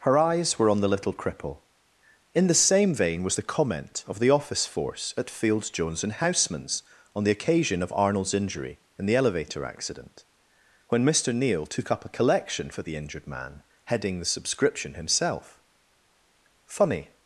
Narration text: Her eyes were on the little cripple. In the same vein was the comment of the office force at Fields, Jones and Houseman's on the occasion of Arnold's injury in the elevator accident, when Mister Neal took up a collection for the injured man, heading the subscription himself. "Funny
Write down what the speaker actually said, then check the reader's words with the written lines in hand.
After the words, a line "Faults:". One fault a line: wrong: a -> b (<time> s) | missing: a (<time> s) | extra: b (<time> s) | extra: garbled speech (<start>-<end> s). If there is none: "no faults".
Her eyes were on the little cripple. In the same vein was the comment of the office force at Fields, Jones and Houseman's on the occasion of Arnold's injury in the elevator accident, when Mister Neal took up a collection for the injured man, heading the subscription himself. "Funny
Faults:
no faults